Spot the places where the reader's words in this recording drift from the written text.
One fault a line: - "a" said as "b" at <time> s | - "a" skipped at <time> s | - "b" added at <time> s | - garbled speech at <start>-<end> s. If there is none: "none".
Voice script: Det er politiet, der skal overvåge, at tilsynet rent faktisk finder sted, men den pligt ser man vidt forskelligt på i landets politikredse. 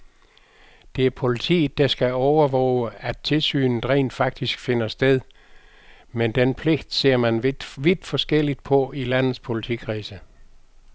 none